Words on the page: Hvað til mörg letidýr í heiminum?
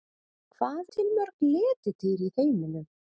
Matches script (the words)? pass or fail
pass